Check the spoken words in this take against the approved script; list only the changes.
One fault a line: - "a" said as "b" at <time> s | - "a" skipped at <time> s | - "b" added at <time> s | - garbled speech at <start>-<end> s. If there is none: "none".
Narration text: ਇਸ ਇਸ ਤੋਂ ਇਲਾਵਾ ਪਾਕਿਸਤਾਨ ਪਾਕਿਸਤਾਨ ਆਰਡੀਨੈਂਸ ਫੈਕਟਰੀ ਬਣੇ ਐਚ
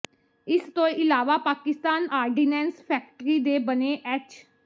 - "ਇਸ" skipped at 0.6 s
- "ਪਾਕਿਸਤਾਨ" skipped at 2.1 s
- "ਦੇ" added at 3.4 s